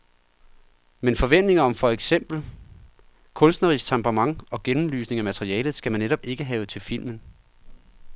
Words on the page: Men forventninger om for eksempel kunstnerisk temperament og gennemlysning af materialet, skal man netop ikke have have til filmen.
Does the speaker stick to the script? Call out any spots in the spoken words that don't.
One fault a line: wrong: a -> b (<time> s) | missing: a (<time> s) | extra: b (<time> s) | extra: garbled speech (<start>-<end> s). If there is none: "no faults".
missing: have (6.7 s)